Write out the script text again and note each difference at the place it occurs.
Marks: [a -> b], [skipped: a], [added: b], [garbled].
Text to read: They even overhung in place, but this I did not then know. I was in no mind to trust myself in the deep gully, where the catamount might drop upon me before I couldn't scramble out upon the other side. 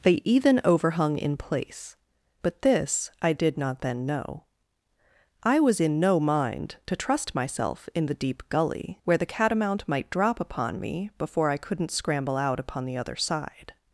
They even overhung in place, but this I did not then know. I was in no mind to trust myself in the deep gully, where the catamount might drop upon me before I couldn't scramble out upon the other side.